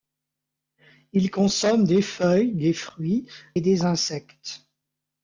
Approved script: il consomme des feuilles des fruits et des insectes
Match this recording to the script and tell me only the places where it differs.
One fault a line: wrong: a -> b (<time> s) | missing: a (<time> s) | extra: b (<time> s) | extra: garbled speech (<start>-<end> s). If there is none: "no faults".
no faults